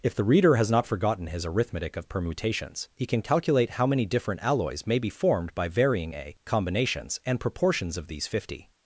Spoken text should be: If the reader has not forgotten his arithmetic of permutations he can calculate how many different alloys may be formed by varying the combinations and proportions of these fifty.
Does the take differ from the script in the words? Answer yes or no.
yes